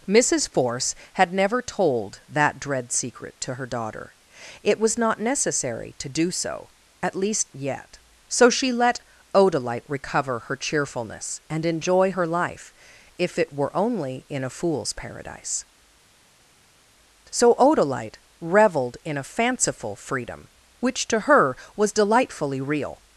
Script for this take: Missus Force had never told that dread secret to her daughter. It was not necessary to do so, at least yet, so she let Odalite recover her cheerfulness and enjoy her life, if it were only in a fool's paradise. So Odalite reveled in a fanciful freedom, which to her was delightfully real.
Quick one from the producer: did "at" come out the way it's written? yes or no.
yes